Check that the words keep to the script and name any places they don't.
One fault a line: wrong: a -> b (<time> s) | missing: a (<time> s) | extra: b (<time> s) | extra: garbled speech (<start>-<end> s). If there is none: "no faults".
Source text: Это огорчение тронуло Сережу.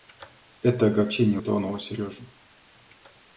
no faults